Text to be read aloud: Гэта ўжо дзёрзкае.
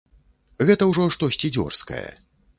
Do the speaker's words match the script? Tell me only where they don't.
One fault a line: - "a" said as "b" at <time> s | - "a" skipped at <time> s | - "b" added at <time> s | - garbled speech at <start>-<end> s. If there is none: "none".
- "штосьці" added at 1.2 s